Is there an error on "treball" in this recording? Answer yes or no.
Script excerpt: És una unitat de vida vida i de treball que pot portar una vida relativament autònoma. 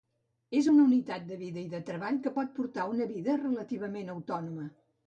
no